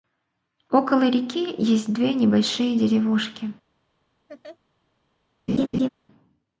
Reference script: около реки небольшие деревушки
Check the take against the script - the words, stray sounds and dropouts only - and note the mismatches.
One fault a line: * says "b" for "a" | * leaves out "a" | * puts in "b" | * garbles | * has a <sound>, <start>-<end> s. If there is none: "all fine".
* puts in "есть две"
* has a laugh, 4.3-4.6 s
* has a laugh, 5.5-5.9 s